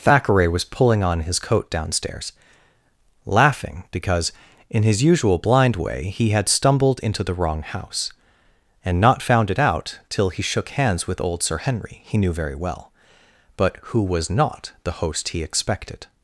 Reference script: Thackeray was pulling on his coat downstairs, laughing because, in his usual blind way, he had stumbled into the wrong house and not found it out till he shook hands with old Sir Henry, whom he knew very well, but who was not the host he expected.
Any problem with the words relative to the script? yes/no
yes